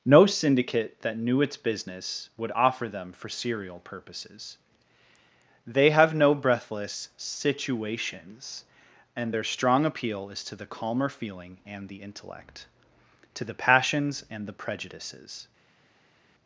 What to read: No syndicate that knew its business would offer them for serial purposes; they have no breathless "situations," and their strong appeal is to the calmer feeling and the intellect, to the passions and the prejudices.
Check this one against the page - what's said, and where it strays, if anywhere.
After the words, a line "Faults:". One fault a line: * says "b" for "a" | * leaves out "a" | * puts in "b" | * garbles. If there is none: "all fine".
No syndicate that knew its business would offer them for serial purposes; they have no breathless "situations," and their strong appeal is to the calmer feeling and the intellect, to the passions and the prejudices.
Faults:
all fine